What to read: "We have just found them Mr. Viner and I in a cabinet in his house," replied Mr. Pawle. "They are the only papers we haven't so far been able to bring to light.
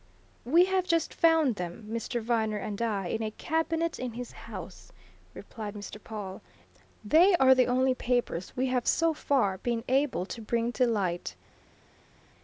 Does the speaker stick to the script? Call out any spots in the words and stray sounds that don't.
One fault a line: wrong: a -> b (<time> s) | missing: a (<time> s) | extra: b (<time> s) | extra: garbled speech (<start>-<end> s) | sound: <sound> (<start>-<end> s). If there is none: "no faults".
wrong: haven't -> have (8.7 s)